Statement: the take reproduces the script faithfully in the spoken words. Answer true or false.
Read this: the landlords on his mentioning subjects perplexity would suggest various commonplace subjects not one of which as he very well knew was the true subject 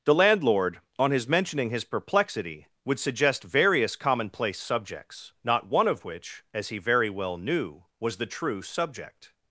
false